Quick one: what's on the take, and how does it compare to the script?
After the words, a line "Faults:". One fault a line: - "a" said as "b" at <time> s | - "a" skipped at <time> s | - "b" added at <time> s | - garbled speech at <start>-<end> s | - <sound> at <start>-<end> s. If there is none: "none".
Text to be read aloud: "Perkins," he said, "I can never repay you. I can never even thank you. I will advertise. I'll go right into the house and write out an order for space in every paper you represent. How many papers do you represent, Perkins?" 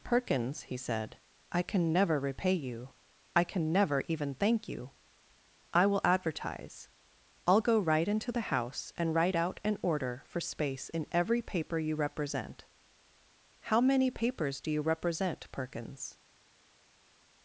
"Perkins," he said, "I can never repay you. I can never even thank you. I will advertise. I'll go right into the house and write out an order for space in every paper you represent. How many papers do you represent, Perkins?"
Faults:
none